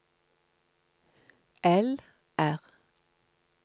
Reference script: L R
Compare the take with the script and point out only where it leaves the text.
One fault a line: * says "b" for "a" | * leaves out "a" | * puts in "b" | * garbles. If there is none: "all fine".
all fine